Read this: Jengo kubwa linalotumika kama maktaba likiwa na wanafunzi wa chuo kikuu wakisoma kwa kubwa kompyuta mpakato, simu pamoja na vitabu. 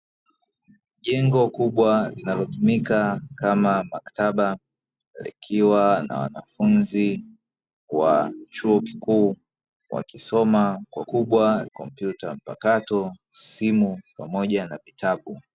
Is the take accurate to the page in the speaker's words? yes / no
yes